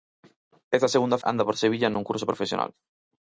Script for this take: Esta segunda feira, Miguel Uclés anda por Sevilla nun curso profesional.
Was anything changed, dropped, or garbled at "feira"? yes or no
yes